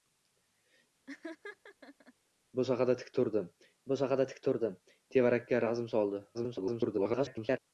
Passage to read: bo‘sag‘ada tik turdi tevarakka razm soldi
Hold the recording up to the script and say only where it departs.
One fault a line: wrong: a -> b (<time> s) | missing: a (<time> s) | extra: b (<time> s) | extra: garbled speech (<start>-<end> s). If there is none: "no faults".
extra: bo‘sag‘ada tik turdi (3.9 s)
extra: garbled speech (6.3-7.6 s)